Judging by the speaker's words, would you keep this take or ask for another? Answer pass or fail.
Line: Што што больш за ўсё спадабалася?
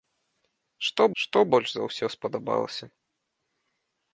pass